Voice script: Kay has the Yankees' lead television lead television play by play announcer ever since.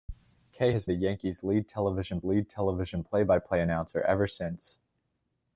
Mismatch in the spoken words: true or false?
false